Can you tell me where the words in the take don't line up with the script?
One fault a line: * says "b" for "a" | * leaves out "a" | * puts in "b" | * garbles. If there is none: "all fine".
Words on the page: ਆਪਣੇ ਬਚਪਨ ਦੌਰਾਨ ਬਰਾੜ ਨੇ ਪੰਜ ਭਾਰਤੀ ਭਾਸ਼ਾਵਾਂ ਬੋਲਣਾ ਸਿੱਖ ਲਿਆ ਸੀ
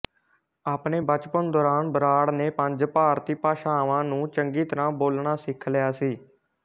* puts in "ਨੂੰ ਚੰਗੀ ਤਰ੍ਹਾਂ"